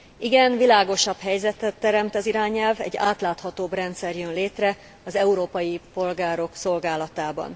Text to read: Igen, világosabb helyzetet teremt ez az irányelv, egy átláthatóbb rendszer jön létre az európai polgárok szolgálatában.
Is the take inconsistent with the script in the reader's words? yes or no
yes